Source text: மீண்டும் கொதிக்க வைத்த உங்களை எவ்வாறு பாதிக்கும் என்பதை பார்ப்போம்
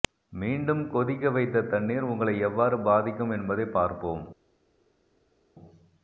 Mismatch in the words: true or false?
true